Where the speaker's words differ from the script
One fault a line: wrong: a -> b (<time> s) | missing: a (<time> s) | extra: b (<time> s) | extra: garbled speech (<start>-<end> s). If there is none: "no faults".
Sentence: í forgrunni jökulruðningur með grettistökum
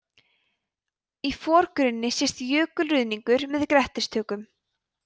extra: sést (2.2 s)